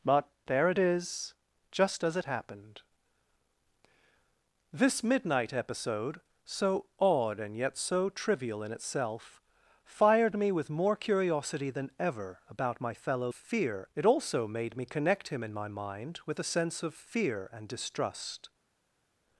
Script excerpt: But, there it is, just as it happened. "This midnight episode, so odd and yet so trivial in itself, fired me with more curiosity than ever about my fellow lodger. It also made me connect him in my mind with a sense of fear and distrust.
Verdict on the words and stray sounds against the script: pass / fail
fail